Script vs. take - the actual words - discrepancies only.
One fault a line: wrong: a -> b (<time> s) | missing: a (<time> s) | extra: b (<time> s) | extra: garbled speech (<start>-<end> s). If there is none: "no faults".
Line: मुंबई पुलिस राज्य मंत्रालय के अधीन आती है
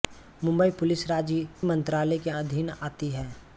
no faults